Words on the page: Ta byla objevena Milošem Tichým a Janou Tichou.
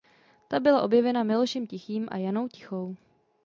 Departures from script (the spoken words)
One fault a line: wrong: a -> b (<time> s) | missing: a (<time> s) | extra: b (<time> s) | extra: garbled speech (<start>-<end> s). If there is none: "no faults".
no faults